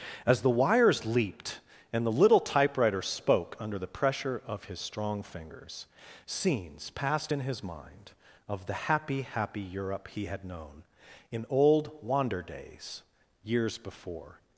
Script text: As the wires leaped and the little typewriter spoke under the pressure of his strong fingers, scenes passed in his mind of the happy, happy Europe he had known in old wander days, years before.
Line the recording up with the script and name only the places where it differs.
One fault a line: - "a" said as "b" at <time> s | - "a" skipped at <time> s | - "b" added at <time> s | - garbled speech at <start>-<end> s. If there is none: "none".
none